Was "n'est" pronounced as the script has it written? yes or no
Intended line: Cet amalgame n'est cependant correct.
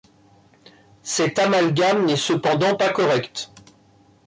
yes